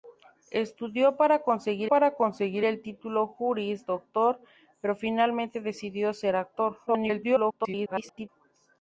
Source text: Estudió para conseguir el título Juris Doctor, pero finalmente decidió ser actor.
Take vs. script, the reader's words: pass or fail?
fail